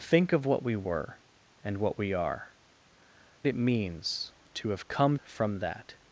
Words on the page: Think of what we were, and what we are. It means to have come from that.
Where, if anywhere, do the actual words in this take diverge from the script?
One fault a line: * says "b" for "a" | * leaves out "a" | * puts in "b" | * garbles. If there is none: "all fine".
all fine